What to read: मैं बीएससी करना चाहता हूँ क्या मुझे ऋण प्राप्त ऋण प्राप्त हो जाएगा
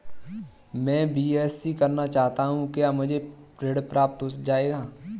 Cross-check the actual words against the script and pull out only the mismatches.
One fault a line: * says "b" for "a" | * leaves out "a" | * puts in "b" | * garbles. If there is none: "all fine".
* leaves out "ऋण प्राप्त"